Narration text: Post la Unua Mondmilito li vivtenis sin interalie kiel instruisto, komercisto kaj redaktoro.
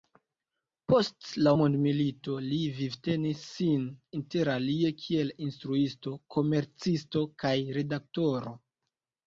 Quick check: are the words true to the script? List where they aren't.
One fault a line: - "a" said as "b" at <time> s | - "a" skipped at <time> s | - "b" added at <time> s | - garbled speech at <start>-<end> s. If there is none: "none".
- "Unua" skipped at 1.5 s